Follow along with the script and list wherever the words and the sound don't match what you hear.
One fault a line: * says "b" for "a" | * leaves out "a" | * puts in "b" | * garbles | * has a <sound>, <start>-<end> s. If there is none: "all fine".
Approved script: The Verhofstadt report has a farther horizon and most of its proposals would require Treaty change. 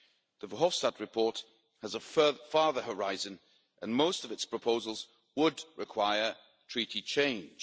all fine